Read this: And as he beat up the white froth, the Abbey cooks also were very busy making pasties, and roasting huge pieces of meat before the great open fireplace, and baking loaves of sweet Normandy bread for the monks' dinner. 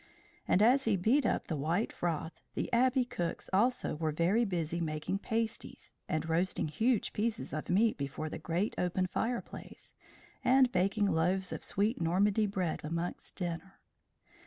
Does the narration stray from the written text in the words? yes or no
yes